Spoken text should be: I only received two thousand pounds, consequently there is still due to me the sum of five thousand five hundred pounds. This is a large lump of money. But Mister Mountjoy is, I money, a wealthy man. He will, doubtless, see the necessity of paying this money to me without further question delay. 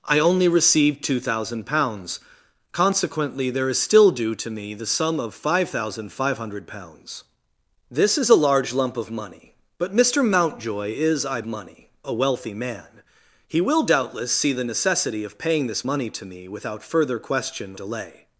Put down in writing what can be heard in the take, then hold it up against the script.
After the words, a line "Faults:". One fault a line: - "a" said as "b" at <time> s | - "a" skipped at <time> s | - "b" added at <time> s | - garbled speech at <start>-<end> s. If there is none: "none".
I only received two thousand pounds, consequently there is still due to me the sum of five thousand five hundred pounds. This is a large lump of money. But Mister Mountjoy is, I money, a wealthy man. He will, doubtless, see the necessity of paying this money to me without further question delay.
Faults:
none